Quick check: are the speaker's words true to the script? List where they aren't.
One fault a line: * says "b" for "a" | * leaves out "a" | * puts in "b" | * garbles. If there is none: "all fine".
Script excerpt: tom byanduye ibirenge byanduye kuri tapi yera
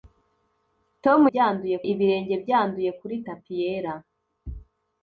all fine